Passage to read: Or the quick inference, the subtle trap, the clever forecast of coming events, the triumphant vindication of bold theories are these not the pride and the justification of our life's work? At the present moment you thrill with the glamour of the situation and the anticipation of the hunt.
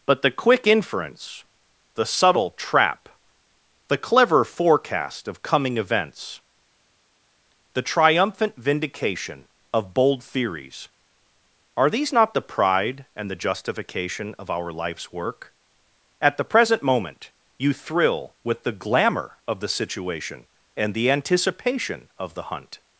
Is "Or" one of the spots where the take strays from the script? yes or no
yes